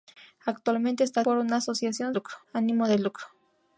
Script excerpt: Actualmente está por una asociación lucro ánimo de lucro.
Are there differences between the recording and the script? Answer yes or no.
no